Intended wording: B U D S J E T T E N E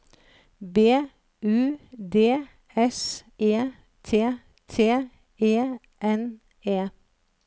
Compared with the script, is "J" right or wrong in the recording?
wrong